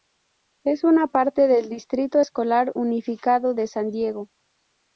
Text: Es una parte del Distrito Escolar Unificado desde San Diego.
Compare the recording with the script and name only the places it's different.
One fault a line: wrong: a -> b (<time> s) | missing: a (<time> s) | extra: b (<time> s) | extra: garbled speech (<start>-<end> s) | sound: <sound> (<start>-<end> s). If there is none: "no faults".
wrong: desde -> de (3.5 s)